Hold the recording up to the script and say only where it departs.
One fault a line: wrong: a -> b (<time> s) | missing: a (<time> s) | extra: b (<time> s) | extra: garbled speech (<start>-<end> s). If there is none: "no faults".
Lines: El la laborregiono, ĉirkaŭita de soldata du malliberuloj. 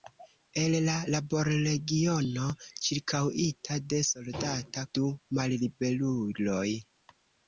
no faults